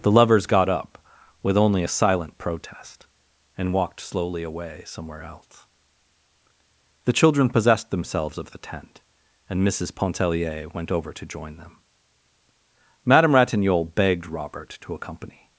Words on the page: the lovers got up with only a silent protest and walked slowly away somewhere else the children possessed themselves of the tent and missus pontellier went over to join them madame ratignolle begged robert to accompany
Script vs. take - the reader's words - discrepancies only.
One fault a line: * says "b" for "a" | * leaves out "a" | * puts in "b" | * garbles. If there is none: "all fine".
all fine